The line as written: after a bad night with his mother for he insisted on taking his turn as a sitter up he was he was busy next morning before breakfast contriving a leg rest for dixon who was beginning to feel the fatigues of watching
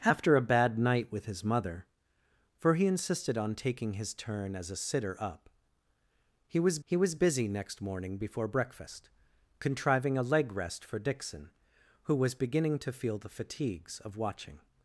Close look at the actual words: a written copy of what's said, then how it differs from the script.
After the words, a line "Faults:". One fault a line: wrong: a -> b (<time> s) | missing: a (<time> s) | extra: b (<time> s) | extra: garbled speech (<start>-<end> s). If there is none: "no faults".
after a bad night with his mother for he insisted on taking his turn as a sitter up he was he was busy next morning before breakfast contriving a leg rest for dixon who was beginning to feel the fatigues of watching
Faults:
no faults